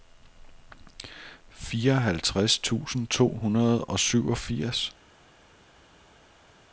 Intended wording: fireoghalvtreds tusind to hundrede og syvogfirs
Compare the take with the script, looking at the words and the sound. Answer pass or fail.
pass